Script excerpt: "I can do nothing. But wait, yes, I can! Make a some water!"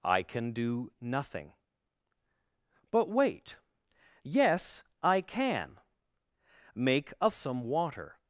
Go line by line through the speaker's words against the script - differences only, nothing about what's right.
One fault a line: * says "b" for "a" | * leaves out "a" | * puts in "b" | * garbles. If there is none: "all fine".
all fine